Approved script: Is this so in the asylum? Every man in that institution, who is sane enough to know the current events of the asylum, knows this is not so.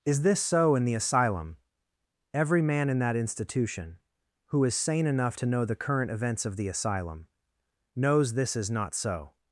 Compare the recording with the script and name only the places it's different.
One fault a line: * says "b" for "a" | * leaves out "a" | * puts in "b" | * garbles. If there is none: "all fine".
all fine